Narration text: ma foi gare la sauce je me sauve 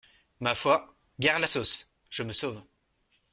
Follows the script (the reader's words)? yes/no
yes